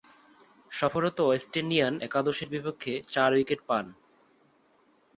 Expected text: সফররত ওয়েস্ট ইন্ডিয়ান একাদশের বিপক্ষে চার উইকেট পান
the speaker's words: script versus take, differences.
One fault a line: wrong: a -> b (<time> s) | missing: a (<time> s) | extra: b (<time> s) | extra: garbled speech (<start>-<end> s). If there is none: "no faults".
no faults